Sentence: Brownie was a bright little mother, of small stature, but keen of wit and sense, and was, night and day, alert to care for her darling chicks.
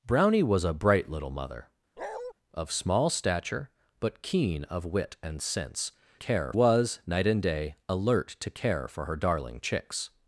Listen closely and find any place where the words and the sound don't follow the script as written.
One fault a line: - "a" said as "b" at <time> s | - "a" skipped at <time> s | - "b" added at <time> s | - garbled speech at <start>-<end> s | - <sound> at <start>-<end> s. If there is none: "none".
- bark at 2.0-2.3 s
- "and" said as "care" at 6.1 s